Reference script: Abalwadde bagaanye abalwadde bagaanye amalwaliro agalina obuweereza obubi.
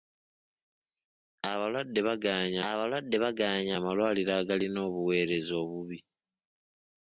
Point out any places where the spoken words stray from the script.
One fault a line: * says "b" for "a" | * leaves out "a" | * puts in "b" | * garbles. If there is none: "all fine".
all fine